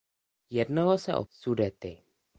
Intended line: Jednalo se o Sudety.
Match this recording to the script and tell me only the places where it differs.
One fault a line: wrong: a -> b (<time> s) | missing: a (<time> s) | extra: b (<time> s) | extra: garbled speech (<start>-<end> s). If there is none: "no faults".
no faults